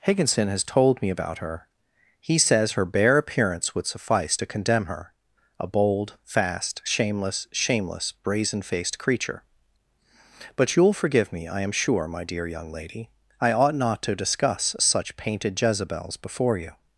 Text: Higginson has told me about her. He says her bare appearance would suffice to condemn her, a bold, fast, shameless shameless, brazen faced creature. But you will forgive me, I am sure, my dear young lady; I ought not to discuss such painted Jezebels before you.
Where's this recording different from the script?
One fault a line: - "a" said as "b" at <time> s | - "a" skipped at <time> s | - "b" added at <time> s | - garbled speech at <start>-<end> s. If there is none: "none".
none